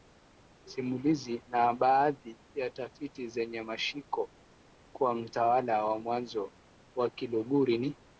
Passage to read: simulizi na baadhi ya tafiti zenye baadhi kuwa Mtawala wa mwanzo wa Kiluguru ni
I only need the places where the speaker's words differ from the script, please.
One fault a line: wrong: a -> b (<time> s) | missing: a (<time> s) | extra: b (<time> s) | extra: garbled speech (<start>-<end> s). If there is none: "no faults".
wrong: baadhi -> mashiko (3.6 s)